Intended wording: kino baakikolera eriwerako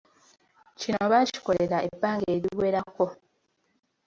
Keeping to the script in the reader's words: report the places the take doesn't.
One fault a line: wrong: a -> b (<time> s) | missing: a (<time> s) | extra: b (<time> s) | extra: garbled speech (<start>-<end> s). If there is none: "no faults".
extra: ebbanga (1.9 s)